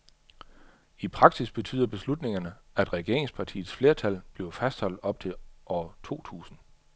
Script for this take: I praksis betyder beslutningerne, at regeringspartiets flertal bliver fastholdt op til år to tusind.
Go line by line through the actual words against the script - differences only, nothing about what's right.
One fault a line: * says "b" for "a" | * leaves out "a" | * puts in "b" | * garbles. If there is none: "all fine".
all fine